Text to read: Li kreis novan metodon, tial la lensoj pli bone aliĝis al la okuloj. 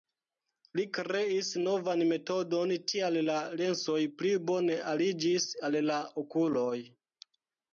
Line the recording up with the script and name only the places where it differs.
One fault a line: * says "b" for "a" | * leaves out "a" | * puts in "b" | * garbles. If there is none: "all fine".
all fine